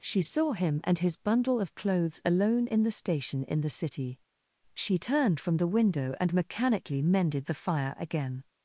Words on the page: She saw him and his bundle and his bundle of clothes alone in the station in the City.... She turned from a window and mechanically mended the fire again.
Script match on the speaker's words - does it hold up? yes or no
no